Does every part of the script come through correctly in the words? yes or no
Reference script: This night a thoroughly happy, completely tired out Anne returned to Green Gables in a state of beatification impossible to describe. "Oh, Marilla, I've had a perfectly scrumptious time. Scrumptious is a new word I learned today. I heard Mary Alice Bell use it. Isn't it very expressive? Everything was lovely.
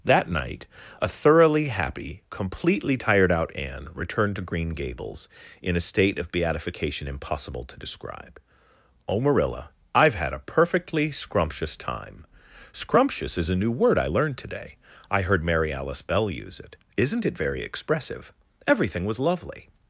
no